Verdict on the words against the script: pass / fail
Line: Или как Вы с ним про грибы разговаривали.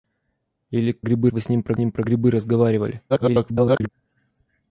fail